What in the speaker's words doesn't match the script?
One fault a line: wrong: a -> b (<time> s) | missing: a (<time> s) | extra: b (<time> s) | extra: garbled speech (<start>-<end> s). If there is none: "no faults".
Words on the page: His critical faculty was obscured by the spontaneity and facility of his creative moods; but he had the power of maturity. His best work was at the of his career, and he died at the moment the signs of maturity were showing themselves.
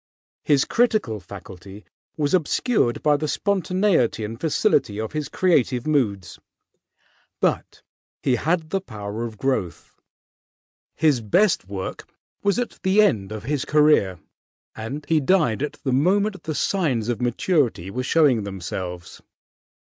wrong: maturity -> growth (9.4 s)
extra: end (13.0 s)